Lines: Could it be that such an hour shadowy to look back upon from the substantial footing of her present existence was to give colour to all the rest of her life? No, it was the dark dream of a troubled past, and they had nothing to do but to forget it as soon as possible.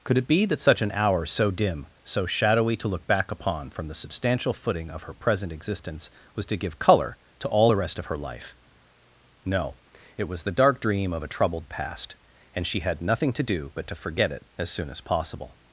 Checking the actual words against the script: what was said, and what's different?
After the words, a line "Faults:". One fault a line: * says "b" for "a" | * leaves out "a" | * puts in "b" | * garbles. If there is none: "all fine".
Could it be that such an hour so dim, so shadowy to look back upon from the substantial footing of her present existence was to give colour to all the rest of her life? No, it was the dark dream of a troubled past, and she had nothing to do but to forget it as soon as possible.
Faults:
* puts in "so dim so"
* says "she" for "they"